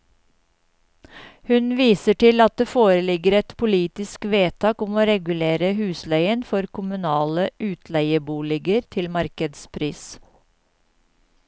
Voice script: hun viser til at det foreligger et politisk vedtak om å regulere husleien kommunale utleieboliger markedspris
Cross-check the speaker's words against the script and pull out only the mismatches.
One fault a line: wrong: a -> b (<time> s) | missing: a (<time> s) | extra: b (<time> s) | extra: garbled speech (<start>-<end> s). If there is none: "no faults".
extra: for (6.5 s)
extra: til (9.0 s)